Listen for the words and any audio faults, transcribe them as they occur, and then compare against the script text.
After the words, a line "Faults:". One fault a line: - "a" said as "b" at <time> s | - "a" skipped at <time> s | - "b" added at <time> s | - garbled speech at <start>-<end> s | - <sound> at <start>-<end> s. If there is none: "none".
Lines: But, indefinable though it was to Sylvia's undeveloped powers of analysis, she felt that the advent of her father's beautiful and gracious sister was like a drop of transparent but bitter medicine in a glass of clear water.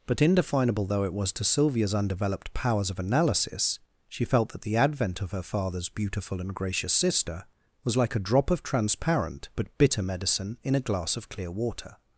But, indefinable though it was to Sylvia's undeveloped powers of analysis, she felt that the advent of her father's beautiful and gracious sister was like a drop of transparent but bitter medicine in a glass of clear water.
Faults:
none